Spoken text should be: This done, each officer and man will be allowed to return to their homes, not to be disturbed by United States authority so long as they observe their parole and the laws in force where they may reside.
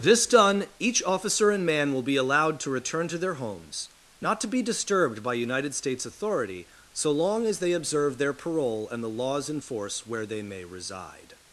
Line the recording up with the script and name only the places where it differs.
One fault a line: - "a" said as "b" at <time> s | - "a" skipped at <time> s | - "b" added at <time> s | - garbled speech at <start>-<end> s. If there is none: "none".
none